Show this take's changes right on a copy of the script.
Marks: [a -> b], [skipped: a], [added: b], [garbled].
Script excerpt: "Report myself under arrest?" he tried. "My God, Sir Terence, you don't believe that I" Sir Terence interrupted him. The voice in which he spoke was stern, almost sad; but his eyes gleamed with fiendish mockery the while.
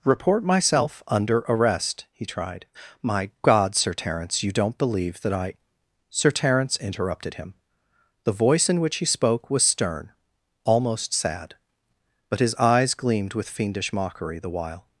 "Report myself under arrest?" he tried. "My God, Sir Terence, you don't believe that I" Sir Terence interrupted him. The voice in which he spoke was stern, almost sad; but his eyes gleamed with fiendish mockery the while.